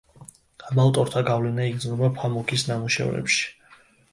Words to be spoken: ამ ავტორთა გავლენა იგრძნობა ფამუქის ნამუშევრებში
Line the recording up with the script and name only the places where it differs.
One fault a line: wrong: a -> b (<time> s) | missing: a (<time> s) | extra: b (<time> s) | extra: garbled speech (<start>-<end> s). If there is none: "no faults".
no faults